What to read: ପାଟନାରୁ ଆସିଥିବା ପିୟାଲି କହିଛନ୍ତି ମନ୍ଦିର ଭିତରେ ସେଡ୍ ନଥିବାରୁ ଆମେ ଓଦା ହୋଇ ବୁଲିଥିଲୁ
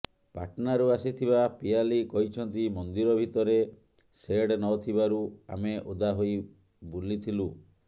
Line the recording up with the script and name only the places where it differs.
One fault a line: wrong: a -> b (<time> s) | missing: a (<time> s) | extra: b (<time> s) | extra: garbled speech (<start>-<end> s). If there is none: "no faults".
no faults